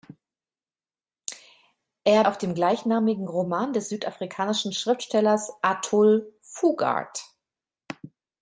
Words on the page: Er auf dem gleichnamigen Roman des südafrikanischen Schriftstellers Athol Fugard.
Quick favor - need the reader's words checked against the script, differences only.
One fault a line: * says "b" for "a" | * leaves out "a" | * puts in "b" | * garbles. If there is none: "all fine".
all fine